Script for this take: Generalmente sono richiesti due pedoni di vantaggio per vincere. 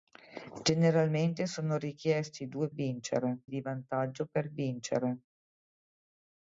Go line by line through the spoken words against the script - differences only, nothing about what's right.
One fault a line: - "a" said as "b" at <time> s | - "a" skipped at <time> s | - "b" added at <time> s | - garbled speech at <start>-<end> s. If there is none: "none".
- "pedoni" said as "vincere" at 2.7 s